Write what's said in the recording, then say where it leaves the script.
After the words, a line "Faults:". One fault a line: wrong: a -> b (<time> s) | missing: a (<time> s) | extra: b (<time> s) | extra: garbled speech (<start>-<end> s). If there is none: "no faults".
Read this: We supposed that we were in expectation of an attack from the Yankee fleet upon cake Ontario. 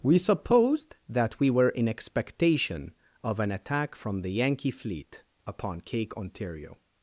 We supposed that we were in expectation of an attack from the Yankee fleet upon cake Ontario.
Faults:
no faults